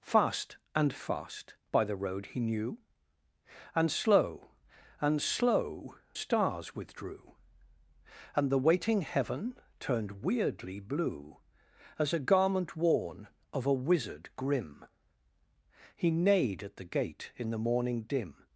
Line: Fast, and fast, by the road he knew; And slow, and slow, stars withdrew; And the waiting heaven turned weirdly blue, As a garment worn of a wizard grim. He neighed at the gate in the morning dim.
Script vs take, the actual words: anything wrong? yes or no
no